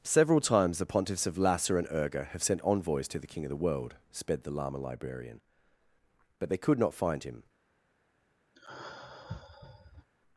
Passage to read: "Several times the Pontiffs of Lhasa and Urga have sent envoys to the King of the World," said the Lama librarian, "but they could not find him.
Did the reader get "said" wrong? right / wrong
wrong